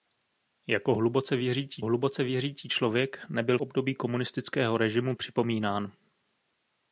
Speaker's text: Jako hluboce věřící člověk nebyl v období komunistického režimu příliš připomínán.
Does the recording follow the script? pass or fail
fail